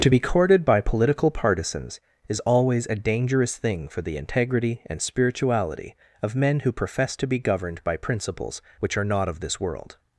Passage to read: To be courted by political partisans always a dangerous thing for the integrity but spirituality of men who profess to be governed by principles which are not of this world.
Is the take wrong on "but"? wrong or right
wrong